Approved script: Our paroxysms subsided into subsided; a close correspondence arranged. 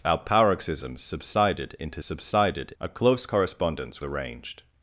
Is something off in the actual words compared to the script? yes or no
no